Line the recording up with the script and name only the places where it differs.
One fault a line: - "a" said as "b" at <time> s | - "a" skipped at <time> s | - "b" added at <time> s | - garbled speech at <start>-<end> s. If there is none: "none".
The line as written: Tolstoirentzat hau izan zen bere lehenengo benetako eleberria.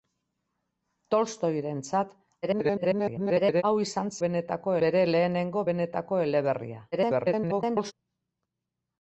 - garbled speech at 2.4-3.6 s
- "zen" said as "benetako" at 4.3 s
- garbled speech at 6.9-7.9 s